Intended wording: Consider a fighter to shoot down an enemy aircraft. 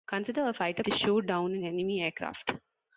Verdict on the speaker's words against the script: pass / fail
pass